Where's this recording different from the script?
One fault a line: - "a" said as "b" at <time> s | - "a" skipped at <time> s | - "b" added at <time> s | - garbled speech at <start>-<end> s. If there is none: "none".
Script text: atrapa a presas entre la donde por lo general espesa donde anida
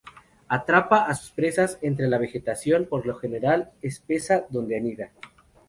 - "sus" added at 1.1 s
- "donde" said as "vegetación" at 2.2 s